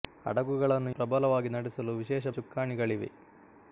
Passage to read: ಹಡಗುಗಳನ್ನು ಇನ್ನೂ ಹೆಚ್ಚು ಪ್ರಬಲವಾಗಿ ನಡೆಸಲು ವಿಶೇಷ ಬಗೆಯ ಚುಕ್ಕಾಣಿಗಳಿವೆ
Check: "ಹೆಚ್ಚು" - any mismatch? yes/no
yes